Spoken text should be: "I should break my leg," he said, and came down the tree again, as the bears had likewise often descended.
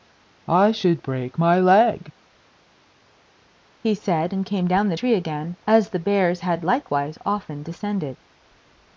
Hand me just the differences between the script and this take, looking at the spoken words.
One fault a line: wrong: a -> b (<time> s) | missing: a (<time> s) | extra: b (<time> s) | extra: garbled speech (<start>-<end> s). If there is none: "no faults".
no faults